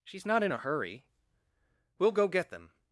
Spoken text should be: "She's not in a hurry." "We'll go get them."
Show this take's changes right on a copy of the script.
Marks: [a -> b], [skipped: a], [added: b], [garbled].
"She's not in a hurry." "We'll go get them."